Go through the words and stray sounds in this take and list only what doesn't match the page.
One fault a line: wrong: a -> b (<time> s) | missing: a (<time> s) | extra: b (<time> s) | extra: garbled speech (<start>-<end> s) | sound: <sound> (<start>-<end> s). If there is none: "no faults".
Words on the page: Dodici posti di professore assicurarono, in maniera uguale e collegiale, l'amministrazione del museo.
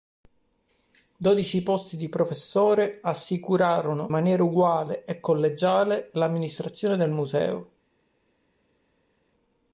missing: in (4.1 s)